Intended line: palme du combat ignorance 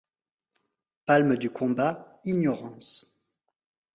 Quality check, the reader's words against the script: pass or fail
pass